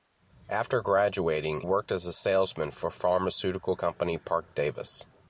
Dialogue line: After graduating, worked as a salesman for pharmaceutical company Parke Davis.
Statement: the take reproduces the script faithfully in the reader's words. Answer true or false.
true